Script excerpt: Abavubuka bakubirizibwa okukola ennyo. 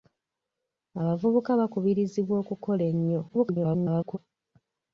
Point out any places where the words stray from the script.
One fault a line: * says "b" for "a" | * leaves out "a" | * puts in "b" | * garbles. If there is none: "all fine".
* garbles